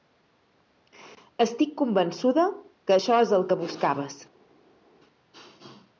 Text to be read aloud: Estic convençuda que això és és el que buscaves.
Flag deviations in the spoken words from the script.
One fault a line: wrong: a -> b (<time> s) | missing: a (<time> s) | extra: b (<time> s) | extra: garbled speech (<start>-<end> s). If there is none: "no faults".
missing: és (3.3 s)